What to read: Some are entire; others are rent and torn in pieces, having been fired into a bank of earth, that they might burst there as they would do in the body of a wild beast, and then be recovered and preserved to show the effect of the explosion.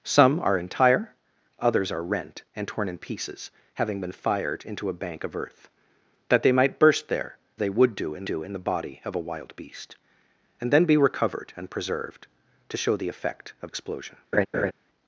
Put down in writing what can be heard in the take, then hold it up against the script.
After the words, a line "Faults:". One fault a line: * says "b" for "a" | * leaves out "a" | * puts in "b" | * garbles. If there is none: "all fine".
Some are entire; others are rent and torn in pieces, having been fired into a bank of earth, that they might burst there they would do in do in the body of a wild beast, and then be recovered and preserved to show the effect of explosion.
Faults:
* leaves out "as"
* puts in "do in"
* leaves out "the"